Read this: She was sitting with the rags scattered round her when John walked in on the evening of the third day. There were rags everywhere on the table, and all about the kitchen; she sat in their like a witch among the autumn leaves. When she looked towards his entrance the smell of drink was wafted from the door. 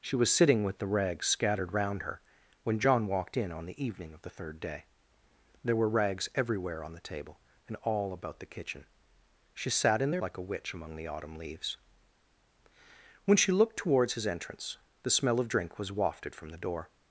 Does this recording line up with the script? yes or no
yes